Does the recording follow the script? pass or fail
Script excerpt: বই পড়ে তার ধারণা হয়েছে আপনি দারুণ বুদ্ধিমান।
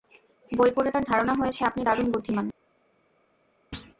pass